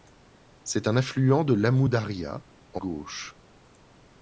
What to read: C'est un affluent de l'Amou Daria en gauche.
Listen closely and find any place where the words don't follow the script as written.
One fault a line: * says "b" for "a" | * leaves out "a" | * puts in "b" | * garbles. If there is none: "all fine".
all fine